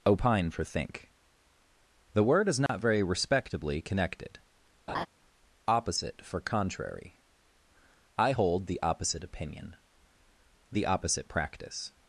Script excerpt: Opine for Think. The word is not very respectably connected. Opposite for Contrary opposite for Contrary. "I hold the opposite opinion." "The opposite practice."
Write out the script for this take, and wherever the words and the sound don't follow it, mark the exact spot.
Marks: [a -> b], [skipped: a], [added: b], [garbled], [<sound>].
Opine for Think. The word is not [dropout] very respectably connected. [laugh] Opposite for Contrary [skipped: opposite for Contrary.] "I hold the opposite opinion." "The opposite practice."